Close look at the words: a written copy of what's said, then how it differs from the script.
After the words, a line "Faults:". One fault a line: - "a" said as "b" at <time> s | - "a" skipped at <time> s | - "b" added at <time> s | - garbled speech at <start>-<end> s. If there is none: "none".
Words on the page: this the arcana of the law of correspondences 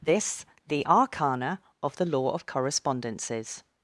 this the arcana of the law of correspondences
Faults:
none